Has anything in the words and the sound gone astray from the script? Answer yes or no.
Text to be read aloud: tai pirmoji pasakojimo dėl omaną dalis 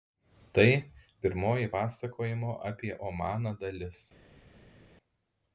yes